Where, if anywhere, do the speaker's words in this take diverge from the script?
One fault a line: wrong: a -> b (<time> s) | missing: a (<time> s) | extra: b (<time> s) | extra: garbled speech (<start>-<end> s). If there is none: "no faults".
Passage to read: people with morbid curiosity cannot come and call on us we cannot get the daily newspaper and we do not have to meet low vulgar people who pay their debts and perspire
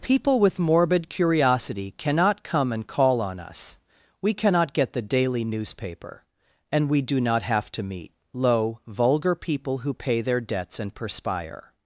no faults